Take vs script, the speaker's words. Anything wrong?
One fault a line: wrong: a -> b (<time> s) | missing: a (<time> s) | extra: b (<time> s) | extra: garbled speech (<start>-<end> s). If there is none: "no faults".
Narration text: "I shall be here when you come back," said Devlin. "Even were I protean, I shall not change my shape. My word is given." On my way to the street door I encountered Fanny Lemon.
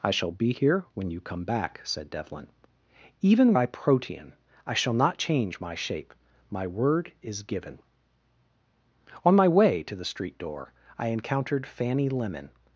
missing: were (3.5 s)